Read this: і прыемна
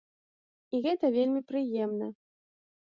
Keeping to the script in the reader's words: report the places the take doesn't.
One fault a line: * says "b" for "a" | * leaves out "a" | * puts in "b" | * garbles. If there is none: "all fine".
* puts in "гэта вельмі"